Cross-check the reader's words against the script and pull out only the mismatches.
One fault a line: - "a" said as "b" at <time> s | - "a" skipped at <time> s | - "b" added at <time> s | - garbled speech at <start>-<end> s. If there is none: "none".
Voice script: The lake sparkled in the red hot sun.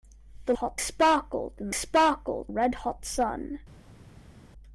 - "lake" said as "hot" at 0.5 s
- "the" said as "sparkled" at 1.7 s